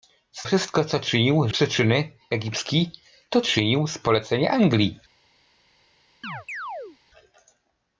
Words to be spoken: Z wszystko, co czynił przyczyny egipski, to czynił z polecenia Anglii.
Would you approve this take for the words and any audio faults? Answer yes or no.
no